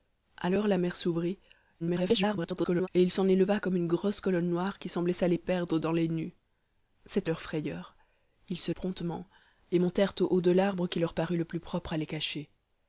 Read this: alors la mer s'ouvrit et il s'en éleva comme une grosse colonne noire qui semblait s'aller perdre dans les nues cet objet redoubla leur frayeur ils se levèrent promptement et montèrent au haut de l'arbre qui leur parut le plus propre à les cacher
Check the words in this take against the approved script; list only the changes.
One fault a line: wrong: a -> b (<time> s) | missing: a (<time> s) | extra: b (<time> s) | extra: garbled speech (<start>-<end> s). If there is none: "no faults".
extra: garbled speech (1.8-2.9 s)
missing: objet redoubla (7.3 s)
missing: levèrent (8.7 s)